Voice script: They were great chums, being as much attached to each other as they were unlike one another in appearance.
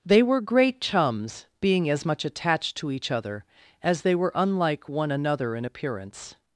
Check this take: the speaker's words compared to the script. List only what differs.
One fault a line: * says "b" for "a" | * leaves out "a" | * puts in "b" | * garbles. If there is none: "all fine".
all fine